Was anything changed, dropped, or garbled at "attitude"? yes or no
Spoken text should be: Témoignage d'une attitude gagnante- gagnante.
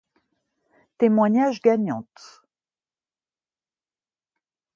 yes